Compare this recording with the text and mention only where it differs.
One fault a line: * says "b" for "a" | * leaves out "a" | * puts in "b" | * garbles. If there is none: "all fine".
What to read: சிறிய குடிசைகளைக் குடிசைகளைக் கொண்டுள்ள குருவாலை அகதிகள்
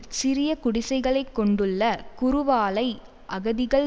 * leaves out "குடிசைகளைக்"